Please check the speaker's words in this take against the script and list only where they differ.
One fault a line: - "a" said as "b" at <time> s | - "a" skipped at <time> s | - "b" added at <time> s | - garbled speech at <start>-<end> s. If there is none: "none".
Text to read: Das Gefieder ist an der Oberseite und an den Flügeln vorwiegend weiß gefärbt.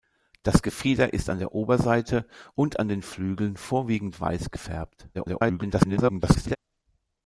- garbled speech at 5.1-6.6 s